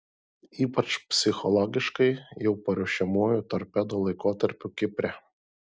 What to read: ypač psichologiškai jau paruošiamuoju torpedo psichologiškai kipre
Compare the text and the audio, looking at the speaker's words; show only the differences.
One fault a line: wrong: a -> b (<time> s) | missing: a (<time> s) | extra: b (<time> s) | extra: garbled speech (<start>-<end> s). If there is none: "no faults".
wrong: psichologiškai -> laikotarpiu (4.1 s)